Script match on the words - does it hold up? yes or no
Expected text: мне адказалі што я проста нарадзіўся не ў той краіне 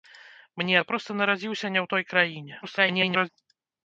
no